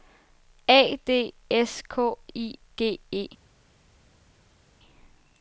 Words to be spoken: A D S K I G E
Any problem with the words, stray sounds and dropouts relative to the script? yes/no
no